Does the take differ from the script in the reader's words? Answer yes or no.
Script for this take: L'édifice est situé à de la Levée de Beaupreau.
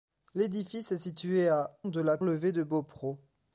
no